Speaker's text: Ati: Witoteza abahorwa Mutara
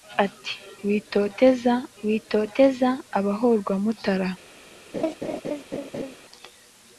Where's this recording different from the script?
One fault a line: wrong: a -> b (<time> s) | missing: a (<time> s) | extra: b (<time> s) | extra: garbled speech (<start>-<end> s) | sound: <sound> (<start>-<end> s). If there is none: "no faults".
extra: Witoteza (2.0 s)
sound: laugh (4.9-6.2 s)